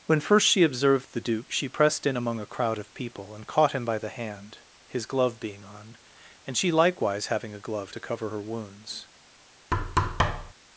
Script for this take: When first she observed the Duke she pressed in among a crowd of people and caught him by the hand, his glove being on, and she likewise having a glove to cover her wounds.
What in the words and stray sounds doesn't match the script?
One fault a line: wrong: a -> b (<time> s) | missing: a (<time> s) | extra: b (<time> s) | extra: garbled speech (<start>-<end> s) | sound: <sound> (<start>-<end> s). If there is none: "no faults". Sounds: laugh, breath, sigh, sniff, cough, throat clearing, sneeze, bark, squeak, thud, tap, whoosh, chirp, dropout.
sound: thud (9.7-10.5 s)